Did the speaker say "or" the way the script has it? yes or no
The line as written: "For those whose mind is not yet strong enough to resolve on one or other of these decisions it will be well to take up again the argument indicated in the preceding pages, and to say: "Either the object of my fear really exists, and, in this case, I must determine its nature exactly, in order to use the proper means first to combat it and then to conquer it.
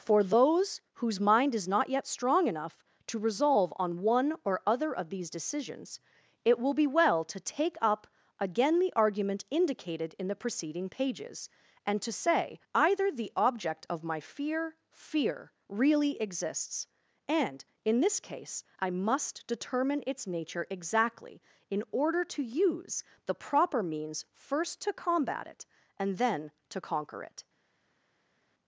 yes